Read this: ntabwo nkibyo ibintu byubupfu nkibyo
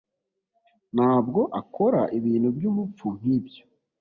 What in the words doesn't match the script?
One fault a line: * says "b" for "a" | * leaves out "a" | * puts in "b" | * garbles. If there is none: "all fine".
* says "akora" for "nkibyo"